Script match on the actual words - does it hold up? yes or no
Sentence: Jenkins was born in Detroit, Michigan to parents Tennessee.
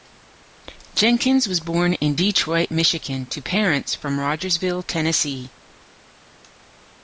no